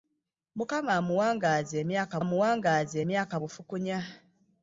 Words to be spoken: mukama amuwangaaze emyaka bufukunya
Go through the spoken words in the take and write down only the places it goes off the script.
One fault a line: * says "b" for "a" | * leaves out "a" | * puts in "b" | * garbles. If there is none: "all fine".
* puts in "amuwangaaze emyaka"